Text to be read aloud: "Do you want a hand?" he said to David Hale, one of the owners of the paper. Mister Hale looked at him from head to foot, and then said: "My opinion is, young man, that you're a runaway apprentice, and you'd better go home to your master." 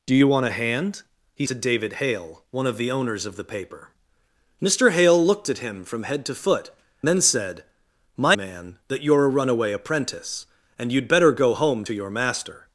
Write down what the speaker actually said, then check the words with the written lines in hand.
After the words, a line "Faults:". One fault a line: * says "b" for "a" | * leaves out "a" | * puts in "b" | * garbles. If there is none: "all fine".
"Do you want a hand?" he to David Hale, one of the owners of the paper. Mister Hale looked at him from head to foot, then said: "My man, that you're a runaway apprentice, and you'd better go home to your master."
Faults:
* leaves out "said"
* leaves out "and"
* leaves out "opinion is young"